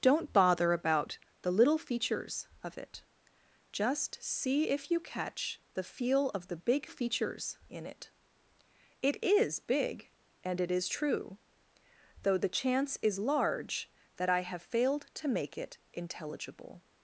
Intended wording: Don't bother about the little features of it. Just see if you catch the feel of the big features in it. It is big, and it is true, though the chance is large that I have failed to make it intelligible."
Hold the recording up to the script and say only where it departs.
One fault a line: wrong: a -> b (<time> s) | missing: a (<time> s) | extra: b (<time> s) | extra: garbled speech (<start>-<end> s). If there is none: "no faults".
no faults